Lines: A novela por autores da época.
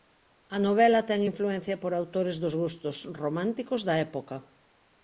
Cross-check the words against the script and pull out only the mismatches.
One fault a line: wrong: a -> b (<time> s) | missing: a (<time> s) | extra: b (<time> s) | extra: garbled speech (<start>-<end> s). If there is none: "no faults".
extra: ten influencia (1.1 s)
extra: dos gustos románticos (2.4 s)